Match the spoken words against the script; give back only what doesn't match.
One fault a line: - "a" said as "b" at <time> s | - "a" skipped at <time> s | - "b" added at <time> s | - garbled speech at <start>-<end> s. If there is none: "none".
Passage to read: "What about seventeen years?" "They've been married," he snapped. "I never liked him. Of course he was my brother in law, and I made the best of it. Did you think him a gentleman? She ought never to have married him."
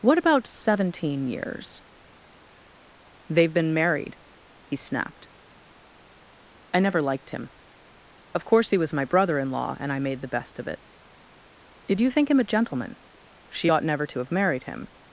none